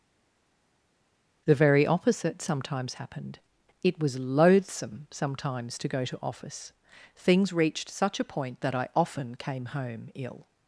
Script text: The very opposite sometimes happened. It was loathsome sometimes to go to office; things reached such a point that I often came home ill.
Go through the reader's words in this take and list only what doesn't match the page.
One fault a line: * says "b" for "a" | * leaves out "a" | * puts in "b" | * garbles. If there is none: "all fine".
all fine